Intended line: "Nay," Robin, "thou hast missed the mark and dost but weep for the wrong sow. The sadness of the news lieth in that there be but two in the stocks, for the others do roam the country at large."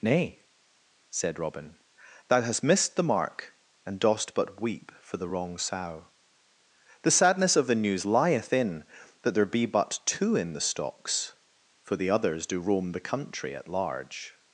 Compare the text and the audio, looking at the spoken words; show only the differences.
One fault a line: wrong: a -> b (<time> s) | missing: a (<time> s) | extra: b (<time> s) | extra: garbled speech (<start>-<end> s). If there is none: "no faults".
extra: said (1.1 s)